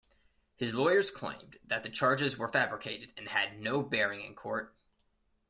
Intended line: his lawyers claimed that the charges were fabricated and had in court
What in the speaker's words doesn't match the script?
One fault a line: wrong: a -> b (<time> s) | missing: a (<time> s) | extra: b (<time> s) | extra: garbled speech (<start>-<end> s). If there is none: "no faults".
extra: no bearing (3.6 s)